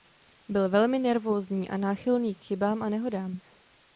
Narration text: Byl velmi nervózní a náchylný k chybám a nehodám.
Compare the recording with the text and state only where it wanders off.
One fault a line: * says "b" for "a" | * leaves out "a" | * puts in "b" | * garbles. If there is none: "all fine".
all fine